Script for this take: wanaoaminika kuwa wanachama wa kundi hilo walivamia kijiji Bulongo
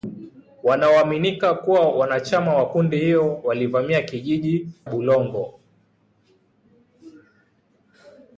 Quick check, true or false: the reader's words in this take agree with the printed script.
true